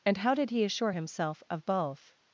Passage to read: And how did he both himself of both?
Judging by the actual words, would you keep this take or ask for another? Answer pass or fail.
fail